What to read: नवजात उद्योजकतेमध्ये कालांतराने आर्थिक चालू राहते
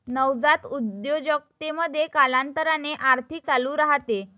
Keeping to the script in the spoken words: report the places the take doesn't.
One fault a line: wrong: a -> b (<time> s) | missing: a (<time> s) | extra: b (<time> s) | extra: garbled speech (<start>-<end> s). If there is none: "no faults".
no faults